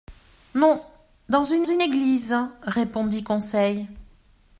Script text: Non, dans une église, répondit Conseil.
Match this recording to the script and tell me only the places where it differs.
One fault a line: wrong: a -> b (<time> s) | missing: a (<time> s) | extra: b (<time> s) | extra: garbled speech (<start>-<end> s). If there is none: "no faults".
extra: une (1.6 s)